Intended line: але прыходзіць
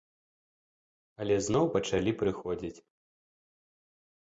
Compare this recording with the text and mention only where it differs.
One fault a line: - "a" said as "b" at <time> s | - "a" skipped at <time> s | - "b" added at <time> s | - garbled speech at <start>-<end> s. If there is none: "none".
- "зноў пачалі" added at 1.5 s